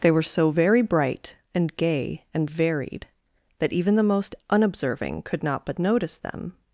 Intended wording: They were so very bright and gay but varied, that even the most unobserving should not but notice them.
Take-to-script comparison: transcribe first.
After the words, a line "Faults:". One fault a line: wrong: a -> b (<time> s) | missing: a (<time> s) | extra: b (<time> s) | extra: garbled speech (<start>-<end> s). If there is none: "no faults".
They were so very bright and gay and varied, that even the most unobserving could not but notice them.
Faults:
wrong: but -> and (2.3 s)
wrong: should -> could (5.2 s)